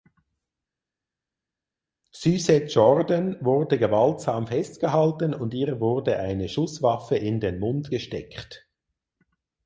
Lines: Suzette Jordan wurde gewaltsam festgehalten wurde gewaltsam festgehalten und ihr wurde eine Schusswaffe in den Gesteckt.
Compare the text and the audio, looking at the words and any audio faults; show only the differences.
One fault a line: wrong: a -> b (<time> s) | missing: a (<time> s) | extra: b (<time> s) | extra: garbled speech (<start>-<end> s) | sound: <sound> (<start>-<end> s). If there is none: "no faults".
missing: wurde gewaltsam festgehalten (5.3 s)
extra: Mund (7.6 s)